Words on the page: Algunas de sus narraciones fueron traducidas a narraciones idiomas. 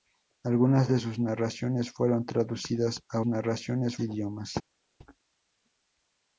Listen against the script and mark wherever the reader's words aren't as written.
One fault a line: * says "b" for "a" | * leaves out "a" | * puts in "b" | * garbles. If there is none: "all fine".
all fine